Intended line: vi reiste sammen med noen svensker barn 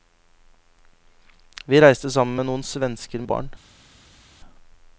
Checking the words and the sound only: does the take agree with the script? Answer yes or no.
yes